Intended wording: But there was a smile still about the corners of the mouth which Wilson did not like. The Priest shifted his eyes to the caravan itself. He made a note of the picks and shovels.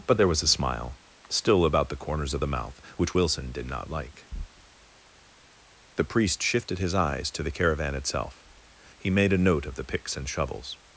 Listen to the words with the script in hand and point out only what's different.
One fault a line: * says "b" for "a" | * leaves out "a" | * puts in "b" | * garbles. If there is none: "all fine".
all fine